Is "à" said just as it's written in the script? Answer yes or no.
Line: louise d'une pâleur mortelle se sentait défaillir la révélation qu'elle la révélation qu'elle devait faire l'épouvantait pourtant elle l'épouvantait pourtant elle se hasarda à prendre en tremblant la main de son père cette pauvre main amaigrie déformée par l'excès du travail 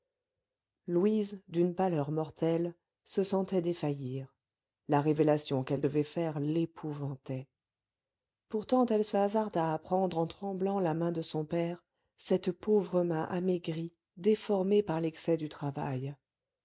yes